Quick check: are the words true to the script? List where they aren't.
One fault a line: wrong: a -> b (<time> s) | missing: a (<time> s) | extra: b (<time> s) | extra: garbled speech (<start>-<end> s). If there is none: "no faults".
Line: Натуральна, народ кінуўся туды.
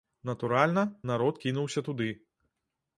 no faults